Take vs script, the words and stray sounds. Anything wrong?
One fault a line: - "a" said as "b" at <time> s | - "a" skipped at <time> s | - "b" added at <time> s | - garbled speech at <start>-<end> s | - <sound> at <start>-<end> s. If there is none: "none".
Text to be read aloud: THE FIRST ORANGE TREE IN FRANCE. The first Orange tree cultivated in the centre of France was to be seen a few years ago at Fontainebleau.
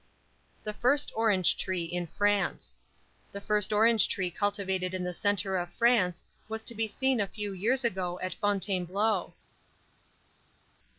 none